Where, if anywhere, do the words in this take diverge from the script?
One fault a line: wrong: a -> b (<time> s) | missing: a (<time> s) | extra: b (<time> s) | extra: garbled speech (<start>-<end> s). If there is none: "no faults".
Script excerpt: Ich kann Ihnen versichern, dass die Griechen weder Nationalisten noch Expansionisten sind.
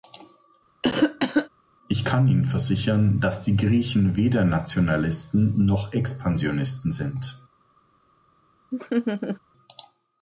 no faults